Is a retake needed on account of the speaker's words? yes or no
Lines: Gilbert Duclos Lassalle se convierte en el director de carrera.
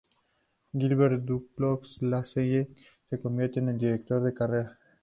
no